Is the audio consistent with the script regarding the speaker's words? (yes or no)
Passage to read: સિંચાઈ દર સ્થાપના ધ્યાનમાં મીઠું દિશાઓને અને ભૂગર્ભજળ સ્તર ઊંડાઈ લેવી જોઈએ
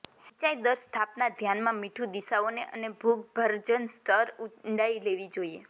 yes